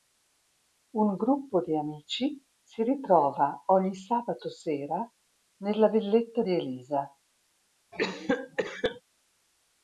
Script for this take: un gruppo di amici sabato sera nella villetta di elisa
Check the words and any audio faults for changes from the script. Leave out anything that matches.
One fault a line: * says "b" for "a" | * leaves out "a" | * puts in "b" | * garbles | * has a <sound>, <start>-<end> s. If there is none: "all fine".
* puts in "si ritrova ogni"
* has a cough, 7.9-9.0 s